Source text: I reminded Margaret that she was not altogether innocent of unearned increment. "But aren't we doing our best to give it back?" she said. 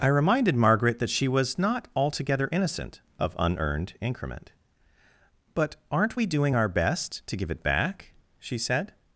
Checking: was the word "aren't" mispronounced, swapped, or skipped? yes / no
no